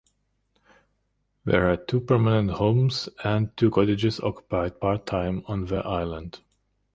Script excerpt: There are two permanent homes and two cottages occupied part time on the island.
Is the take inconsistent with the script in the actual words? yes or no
no